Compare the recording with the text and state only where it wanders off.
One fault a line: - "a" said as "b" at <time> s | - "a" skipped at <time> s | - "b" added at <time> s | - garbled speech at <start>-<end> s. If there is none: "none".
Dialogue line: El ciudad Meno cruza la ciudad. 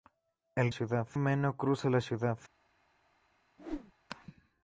none